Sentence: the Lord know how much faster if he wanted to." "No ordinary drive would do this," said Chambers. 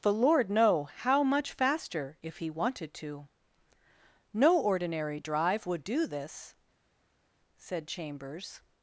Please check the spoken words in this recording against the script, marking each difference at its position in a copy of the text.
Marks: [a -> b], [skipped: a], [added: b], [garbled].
the Lord know how much faster if he wanted to." "No ordinary drive would do this," said Chambers.